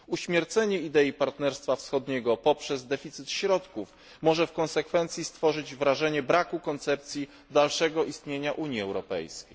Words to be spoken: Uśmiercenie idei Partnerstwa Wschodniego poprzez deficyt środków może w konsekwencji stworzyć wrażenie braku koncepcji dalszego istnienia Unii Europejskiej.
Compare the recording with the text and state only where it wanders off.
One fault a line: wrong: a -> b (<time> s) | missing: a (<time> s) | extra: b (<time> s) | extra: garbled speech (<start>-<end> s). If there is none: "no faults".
no faults